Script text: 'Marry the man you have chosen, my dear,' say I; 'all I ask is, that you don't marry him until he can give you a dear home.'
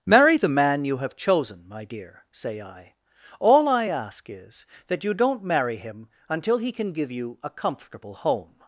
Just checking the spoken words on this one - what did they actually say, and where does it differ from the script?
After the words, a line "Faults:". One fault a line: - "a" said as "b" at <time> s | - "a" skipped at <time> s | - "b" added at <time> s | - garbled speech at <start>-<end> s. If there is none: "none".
'Marry the man you have chosen, my dear,' say I; 'all I ask is, that you don't marry him until he can give you a comfortable home.'
Faults:
- "dear" said as "comfortable" at 7.5 s